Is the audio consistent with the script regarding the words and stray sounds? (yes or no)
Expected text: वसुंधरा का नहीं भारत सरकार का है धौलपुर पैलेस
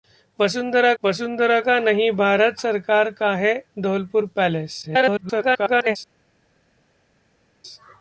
no